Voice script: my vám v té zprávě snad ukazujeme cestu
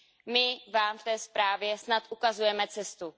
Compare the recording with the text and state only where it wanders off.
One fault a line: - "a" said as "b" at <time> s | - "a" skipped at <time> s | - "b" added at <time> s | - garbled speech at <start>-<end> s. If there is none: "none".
none